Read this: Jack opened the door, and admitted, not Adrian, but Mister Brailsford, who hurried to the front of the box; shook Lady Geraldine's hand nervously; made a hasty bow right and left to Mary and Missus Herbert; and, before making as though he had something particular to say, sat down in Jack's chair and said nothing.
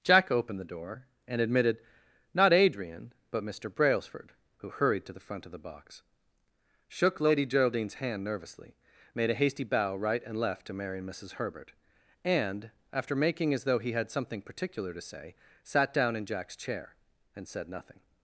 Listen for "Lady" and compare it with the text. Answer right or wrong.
right